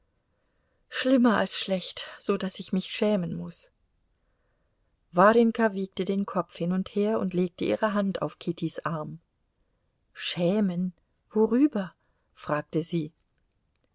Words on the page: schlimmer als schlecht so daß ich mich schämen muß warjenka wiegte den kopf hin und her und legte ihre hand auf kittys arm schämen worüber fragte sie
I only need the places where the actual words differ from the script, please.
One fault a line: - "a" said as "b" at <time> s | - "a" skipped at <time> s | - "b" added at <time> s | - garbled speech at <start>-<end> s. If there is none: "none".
none